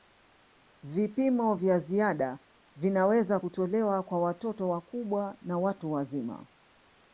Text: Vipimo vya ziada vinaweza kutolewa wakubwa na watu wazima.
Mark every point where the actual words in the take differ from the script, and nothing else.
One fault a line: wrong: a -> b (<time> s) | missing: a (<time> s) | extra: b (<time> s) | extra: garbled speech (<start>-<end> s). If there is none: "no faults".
extra: kwa watoto (4.0 s)